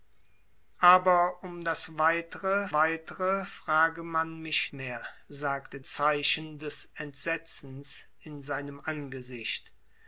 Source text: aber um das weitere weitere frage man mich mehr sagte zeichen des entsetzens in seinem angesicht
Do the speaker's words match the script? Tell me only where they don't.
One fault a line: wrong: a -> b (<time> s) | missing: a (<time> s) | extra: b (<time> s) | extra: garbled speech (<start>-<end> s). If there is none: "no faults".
no faults